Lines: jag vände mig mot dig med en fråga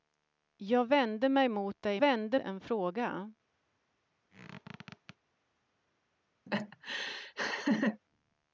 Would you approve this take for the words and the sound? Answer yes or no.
no